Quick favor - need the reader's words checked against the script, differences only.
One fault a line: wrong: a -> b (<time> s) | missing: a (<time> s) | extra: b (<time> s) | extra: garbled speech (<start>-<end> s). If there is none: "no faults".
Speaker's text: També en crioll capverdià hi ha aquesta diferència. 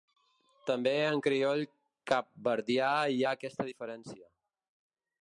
no faults